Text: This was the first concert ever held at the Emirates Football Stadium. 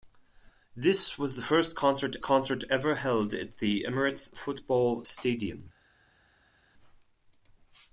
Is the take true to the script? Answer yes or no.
no